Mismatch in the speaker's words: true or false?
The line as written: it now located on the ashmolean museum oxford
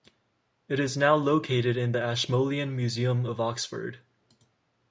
true